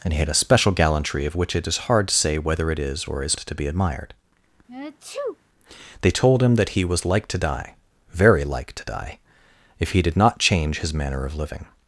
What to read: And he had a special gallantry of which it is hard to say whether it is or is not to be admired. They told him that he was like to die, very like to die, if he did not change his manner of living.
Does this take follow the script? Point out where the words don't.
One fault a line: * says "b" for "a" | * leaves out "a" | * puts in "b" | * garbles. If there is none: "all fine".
* leaves out "not"